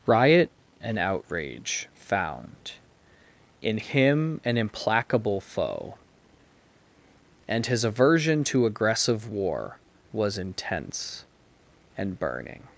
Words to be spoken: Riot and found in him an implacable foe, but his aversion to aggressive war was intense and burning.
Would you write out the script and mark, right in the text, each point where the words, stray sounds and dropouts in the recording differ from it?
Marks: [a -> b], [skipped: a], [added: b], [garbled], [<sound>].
Riot and [added: outrage] found in him an implacable foe, [but -> and] his aversion to aggressive war was intense and burning.